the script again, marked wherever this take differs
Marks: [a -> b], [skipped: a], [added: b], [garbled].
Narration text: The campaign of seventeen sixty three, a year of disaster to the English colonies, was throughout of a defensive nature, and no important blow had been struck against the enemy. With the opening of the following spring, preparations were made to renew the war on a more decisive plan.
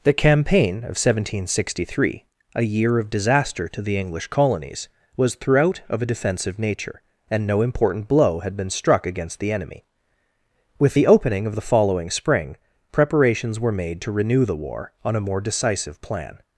The campaign of seventeen sixty three, a year of disaster to the English colonies, was throughout of a defensive nature, and no important blow had been struck against the enemy. With the opening of the following spring, preparations were made to renew the war on a more decisive plan.